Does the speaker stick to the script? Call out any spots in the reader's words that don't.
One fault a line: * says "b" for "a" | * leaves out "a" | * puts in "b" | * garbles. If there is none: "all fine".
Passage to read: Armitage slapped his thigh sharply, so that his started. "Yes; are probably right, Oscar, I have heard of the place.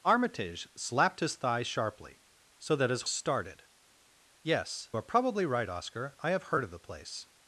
all fine